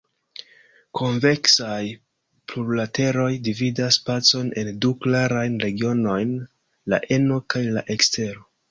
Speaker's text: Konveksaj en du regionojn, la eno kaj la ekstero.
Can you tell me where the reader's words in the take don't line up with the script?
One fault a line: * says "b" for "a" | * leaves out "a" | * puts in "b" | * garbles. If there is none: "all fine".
* puts in "plurlateroj dividas spacon"
* puts in "klarajn"